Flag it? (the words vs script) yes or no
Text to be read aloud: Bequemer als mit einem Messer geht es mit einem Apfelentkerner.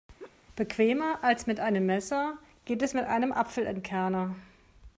no